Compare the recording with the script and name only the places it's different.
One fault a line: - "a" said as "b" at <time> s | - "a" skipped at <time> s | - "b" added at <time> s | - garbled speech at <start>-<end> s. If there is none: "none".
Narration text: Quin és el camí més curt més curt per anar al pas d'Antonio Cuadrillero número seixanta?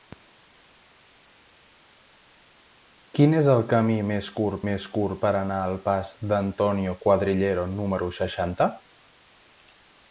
none